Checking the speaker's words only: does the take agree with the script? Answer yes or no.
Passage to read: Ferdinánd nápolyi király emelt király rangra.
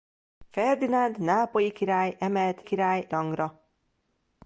yes